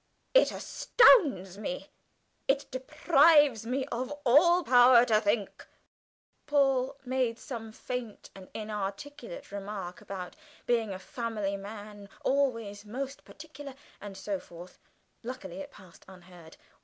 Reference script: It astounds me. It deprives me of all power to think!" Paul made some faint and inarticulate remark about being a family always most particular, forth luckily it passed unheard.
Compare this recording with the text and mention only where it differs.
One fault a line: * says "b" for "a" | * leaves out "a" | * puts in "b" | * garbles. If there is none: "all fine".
* puts in "man"
* puts in "and so"